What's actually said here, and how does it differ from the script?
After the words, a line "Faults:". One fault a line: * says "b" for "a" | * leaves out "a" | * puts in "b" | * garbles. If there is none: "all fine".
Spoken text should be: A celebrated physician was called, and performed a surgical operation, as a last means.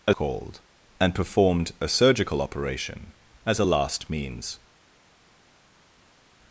A called, and performed a surgical operation, as a last means.
Faults:
* leaves out "celebrated physician was"